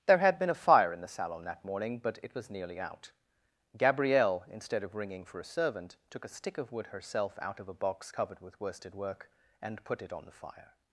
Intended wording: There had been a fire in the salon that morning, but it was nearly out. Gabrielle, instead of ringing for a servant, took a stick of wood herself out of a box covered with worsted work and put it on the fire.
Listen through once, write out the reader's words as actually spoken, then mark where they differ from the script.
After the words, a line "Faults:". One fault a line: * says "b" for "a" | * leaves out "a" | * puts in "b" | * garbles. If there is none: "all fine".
There had been a fire in the salon that morning, but it was nearly out. Gabrielle, instead of ringing for a servant, took a stick of wood herself out of a box covered with worsted work and put it on the fire.
Faults:
all fine